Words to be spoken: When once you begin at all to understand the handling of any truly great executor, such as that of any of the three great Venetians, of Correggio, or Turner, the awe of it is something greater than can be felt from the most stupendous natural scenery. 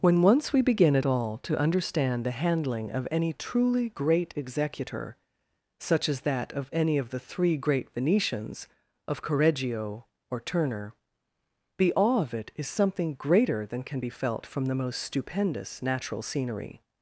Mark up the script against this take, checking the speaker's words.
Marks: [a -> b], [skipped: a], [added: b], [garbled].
When once [you -> we] begin at all to understand the handling of any truly great executor, such as that of any of the three great Venetians, of Correggio, or Turner, the awe of it is something greater than can be felt from the most stupendous natural scenery.